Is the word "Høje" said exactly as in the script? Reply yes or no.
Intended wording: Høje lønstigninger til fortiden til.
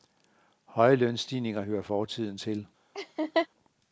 yes